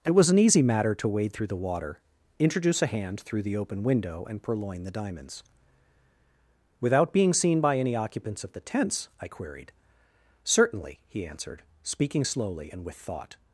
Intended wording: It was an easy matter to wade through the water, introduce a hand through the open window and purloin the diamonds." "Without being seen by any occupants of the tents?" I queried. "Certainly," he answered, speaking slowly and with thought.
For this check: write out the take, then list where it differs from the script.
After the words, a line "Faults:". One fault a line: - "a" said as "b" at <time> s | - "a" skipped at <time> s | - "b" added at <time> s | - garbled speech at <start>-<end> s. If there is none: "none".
It was an easy matter to wade through the water, introduce a hand through the open window and purloin the diamonds." "Without being seen by any occupants of the tents?" I queried. "Certainly," he answered, speaking slowly and with thought.
Faults:
none